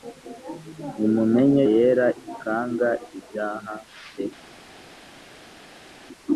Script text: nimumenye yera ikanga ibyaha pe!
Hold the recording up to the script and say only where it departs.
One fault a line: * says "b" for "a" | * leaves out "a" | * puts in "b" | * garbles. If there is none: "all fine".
all fine